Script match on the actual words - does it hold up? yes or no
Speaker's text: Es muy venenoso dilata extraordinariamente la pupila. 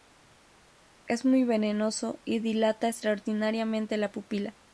no